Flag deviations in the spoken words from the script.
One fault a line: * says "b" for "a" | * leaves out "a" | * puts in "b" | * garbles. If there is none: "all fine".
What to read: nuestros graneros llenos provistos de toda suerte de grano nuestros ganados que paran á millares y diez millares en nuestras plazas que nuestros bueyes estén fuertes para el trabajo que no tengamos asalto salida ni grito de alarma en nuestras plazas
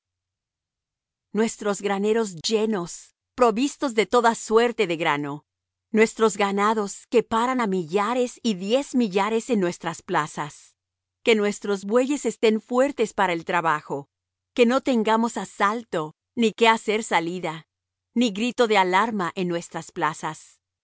* puts in "ni que hacer"